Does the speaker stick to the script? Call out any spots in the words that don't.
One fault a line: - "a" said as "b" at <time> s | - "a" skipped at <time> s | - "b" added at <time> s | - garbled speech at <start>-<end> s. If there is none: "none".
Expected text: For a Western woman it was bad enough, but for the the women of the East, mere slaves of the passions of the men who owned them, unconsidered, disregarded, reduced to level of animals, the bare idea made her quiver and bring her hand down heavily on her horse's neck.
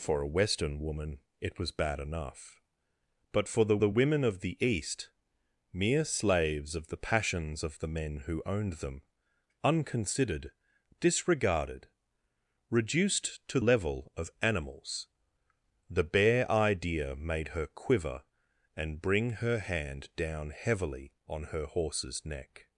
none